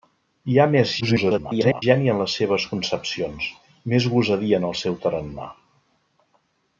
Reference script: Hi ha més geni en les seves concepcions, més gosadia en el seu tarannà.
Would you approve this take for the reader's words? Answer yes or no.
no